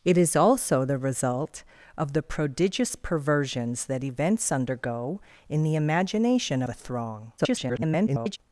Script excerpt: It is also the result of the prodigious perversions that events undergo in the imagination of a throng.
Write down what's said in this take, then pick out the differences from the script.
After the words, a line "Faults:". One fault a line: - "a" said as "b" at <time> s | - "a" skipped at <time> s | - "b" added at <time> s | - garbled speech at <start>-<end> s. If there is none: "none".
It is also the result of the prodigious perversions that events undergo in the imagination a throng. [garbled]
Faults:
- "of" skipped at 6.6 s
- garbled speech at 7.4-8.4 s